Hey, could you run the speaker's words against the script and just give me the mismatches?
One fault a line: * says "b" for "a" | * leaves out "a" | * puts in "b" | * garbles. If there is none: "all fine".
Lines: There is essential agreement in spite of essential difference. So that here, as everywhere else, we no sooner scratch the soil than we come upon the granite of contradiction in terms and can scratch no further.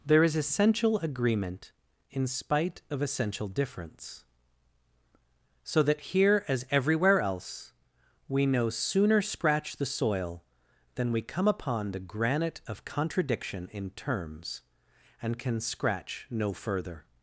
all fine